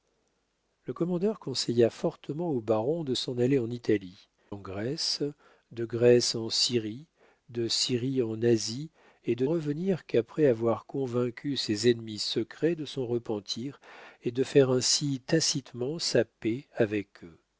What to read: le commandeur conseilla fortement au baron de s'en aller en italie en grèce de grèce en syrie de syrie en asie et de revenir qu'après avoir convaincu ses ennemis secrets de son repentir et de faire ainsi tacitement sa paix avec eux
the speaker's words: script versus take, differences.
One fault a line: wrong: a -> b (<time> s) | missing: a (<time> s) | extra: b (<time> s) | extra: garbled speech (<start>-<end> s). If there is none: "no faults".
no faults